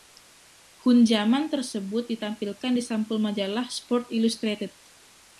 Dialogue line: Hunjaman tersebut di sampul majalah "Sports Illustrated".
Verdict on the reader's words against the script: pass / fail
fail